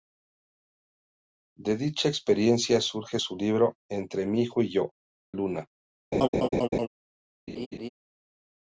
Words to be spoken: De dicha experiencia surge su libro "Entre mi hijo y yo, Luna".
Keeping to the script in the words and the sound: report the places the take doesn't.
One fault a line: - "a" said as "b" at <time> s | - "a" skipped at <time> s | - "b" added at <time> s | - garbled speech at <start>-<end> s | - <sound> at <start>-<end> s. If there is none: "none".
- laugh at 6.1-6.9 s
- laugh at 7.5-7.9 s